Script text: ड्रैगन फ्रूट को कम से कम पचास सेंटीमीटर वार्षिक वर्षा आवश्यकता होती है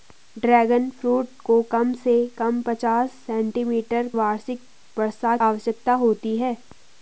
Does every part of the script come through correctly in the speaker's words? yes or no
yes